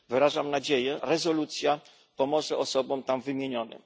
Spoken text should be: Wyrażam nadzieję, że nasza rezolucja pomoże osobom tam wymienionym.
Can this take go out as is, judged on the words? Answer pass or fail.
fail